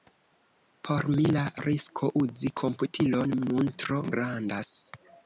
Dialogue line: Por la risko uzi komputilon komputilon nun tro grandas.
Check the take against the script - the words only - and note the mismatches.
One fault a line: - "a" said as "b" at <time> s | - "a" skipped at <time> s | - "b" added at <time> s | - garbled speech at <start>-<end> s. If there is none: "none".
- "mi" added at 1.1 s
- "komputilon" skipped at 3.4 s